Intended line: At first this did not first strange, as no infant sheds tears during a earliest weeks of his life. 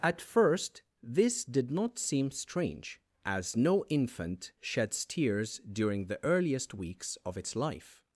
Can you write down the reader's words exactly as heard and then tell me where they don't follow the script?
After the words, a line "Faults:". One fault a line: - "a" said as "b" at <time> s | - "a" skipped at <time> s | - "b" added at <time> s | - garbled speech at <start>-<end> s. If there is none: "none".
At first this did not seem strange, as no infant sheds tears during the earliest weeks of its life.
Faults:
- "first" said as "seem" at 2.0 s
- "a" said as "the" at 6.0 s
- "his" said as "its" at 7.3 s